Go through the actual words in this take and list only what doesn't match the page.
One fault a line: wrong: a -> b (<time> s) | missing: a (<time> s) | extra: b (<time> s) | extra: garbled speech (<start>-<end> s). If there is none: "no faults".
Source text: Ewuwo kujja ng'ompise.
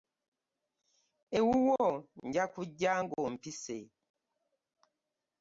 extra: nja (2.3 s)